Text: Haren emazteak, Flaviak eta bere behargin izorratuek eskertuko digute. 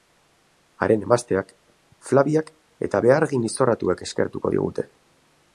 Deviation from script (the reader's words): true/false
true